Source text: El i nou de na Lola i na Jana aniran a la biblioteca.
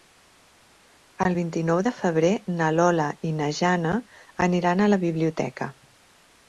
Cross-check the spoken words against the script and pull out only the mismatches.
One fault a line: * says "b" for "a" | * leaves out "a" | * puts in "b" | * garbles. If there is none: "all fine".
* puts in "vint"
* puts in "febrer"